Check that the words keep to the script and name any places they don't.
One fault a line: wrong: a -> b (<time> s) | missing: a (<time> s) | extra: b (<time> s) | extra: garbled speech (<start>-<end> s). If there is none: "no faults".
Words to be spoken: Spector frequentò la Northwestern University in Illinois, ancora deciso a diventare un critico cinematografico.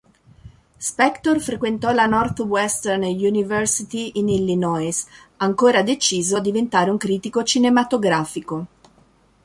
no faults